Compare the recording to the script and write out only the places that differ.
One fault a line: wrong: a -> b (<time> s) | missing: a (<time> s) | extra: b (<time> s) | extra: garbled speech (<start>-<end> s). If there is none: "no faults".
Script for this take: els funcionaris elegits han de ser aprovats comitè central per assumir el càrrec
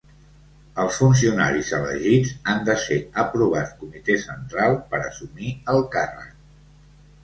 no faults